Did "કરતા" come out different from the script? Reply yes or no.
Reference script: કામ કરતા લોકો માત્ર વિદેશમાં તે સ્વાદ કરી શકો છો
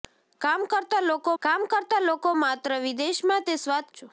no